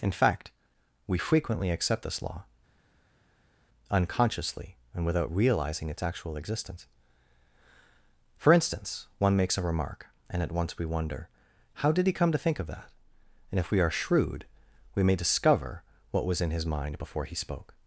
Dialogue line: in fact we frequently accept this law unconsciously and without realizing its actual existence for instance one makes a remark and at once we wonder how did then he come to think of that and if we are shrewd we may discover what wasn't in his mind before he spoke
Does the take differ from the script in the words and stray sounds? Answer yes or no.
yes